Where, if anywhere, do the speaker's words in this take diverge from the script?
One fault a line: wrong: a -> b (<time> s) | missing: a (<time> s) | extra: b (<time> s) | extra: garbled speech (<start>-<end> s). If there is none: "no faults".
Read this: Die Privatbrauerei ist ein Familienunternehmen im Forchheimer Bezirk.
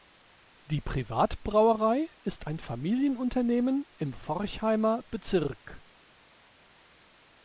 no faults